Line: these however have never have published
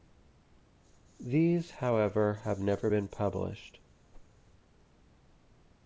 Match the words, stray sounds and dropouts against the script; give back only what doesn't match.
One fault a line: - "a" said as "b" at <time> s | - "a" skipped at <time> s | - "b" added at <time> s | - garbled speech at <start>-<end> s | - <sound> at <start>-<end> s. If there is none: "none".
- "have" said as "been" at 2.9 s
- whoosh at 4.1-4.3 s